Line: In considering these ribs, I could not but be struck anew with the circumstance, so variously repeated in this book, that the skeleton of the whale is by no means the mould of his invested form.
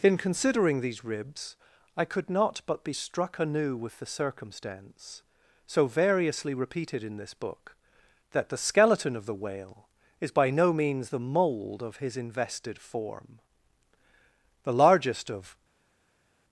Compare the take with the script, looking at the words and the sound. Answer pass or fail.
fail